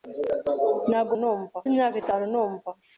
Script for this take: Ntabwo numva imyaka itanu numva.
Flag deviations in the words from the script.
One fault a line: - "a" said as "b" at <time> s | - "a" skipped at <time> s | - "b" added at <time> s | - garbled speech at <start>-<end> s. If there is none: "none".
none